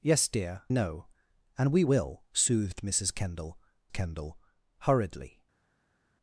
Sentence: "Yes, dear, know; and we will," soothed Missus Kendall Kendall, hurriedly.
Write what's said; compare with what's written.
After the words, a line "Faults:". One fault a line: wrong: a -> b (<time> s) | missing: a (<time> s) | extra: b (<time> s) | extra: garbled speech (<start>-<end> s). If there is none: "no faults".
"Yes, dear, know; and we will," soothed Missus Kendall Kendall, hurriedly.
Faults:
no faults